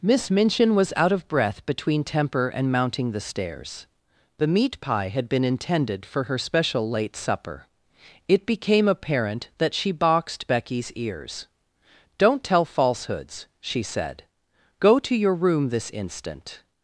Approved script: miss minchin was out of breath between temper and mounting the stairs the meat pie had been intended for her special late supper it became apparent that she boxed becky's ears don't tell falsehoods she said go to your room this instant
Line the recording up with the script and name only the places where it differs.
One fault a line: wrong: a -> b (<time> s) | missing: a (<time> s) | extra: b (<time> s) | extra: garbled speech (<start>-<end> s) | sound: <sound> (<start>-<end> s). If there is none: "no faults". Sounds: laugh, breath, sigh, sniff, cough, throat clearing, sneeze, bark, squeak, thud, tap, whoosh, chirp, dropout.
no faults